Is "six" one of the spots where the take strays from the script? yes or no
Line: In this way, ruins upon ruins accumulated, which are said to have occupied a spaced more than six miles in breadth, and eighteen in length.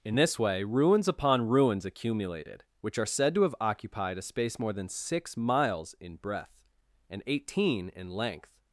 no